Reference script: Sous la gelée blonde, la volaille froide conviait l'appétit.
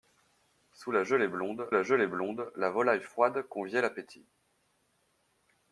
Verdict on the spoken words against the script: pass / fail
fail